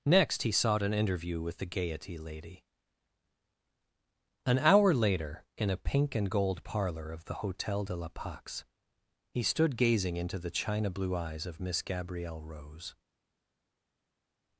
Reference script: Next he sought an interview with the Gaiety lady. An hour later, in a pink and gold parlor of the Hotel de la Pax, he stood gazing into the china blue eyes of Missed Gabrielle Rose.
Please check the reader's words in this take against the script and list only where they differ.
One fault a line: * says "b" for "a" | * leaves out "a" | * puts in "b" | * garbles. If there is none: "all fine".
* says "Miss" for "Missed"